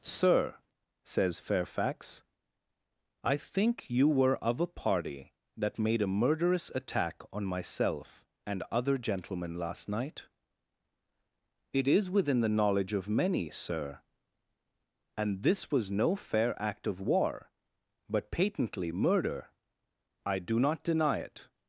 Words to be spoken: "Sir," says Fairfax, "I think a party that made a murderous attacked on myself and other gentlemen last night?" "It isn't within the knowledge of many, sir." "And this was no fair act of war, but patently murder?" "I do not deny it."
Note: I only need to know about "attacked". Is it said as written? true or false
false